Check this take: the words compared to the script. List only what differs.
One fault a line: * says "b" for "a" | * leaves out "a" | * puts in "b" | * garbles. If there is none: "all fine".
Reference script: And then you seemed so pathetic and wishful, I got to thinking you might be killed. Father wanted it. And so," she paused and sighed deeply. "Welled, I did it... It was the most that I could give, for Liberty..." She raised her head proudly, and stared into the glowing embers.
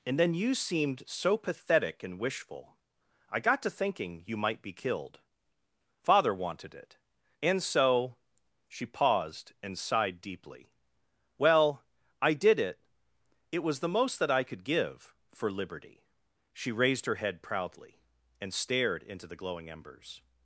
* says "Well" for "Welled"